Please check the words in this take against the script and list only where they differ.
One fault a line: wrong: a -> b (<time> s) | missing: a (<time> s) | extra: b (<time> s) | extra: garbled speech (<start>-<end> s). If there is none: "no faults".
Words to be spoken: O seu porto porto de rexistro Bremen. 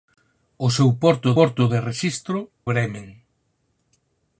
no faults